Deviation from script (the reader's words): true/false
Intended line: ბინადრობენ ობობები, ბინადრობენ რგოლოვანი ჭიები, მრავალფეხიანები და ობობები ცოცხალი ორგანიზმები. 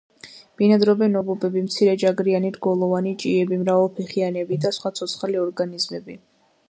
true